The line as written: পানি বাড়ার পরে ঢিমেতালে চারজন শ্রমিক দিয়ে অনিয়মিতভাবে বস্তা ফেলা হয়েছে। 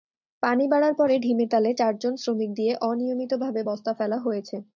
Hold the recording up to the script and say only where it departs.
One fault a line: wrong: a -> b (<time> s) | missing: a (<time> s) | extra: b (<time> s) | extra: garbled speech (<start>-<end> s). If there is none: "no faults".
no faults